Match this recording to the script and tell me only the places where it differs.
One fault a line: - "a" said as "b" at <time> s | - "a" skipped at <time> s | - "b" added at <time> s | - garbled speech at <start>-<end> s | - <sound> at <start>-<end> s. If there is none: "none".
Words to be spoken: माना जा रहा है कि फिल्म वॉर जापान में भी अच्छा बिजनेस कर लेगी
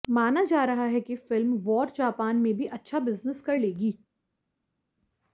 none